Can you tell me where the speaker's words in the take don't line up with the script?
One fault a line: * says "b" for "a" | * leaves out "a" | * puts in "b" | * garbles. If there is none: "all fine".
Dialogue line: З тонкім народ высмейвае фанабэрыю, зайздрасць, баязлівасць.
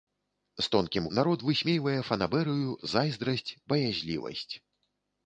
all fine